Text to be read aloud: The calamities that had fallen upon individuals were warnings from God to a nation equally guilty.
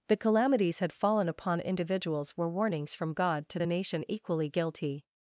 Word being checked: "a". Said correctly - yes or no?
no